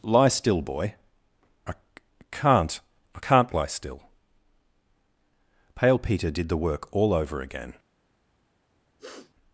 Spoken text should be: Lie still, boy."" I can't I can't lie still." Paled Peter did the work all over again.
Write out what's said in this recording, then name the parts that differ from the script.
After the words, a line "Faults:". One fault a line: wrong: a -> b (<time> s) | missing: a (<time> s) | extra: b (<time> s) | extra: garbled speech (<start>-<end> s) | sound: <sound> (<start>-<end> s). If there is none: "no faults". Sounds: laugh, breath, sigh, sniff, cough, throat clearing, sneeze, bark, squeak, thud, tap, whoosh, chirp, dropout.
Lie still, boy."" I can't I can't lie still." Pale Peter did the work all over again.
Faults:
wrong: Paled -> Pale (5.7 s)
sound: sniff (9.0-9.3 s)